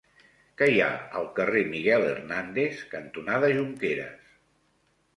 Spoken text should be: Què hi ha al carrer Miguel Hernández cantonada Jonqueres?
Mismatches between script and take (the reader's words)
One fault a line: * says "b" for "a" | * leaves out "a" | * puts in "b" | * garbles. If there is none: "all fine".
all fine